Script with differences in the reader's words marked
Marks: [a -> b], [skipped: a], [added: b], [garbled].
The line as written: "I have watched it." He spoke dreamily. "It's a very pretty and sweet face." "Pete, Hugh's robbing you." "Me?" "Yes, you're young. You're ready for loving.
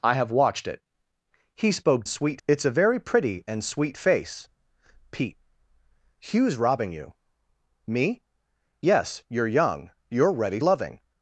"I have watched it." He spoke [dreamily. -> sweet] "It's a very pretty and sweet face." "Pete, Hugh's robbing you." "Me?" "Yes, you're young. You're ready [skipped: for] loving.